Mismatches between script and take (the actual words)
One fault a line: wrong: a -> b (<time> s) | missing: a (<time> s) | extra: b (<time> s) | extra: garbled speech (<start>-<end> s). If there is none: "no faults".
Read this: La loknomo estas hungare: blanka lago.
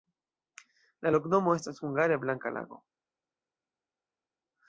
no faults